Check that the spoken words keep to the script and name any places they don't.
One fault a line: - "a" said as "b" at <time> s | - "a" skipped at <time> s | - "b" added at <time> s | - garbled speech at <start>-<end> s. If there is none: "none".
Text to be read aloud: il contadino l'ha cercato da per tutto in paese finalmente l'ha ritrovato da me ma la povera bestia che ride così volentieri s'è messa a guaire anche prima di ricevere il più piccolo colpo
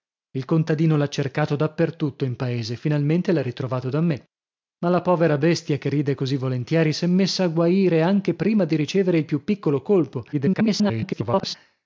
- garbled speech at 10.3-11.6 s